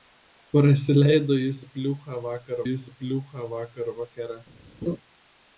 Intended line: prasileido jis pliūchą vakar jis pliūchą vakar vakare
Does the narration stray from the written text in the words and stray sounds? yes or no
yes